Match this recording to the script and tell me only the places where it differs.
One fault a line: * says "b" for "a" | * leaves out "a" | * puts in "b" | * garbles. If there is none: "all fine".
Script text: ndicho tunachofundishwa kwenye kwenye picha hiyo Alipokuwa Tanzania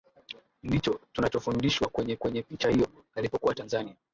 all fine